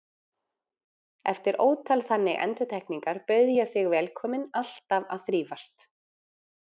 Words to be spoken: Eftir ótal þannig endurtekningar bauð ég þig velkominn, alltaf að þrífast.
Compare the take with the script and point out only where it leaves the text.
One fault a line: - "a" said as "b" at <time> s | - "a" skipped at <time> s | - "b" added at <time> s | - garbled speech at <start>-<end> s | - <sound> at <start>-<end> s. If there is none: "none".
none